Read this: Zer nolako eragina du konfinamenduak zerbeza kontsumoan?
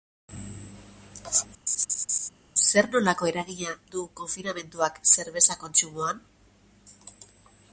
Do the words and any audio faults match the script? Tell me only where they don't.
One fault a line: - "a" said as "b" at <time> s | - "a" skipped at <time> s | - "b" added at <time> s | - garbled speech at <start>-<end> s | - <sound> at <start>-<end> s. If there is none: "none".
- laugh at 1.7-2.3 s